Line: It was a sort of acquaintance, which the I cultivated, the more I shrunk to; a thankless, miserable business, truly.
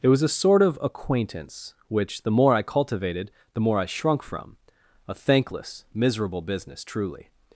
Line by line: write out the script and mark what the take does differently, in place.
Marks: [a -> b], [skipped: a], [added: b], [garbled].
It was a sort of acquaintance, which the [added: more] I cultivated, the more I shrunk [to; -> from] a thankless, miserable business, truly.